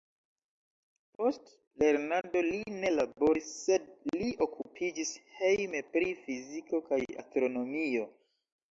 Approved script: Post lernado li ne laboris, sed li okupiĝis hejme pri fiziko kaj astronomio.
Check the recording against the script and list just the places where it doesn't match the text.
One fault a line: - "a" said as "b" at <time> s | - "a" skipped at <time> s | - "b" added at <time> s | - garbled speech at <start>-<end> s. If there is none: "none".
none